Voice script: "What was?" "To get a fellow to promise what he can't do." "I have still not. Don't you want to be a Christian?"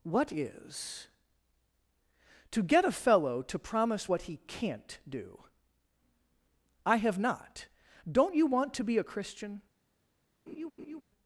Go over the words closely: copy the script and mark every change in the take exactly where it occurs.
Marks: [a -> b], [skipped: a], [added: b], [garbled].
"What [was?" -> is] "To get a fellow to promise what he can't do." "I have [skipped: still] not. Don't you want to be a Christian?"